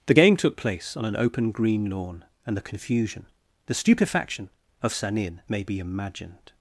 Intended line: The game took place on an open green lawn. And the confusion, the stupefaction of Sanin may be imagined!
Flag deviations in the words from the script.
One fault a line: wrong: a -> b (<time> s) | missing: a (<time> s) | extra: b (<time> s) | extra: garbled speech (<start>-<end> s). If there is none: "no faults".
no faults